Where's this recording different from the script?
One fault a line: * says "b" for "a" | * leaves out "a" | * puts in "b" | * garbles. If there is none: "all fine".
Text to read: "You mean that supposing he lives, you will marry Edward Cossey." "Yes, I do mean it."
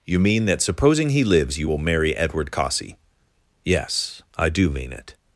all fine